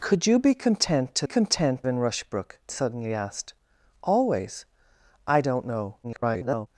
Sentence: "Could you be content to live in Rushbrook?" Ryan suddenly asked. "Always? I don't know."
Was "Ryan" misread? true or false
true